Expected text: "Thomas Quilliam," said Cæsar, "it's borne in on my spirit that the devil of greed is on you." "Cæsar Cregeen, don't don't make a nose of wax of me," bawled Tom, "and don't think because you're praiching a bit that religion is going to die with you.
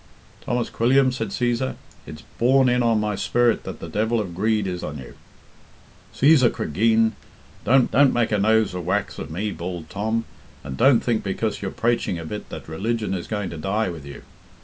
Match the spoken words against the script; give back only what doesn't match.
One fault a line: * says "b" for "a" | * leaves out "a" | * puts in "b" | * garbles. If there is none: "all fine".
all fine